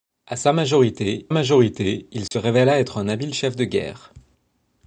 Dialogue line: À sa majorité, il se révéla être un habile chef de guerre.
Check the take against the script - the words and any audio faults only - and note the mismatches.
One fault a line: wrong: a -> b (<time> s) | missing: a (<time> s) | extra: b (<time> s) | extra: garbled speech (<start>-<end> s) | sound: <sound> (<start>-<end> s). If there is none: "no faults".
extra: majorité (1.3 s)
sound: dropout (2.3-2.3 s)